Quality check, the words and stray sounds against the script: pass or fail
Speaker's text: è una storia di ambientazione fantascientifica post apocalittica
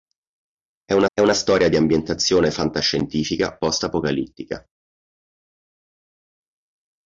fail